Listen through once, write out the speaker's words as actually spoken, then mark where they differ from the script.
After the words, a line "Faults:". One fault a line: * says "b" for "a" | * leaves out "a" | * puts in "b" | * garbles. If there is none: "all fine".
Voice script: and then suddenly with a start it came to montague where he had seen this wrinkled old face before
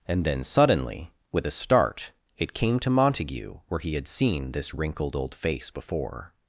and then suddenly with a start it came to montague where he had seen this wrinkled old face before
Faults:
all fine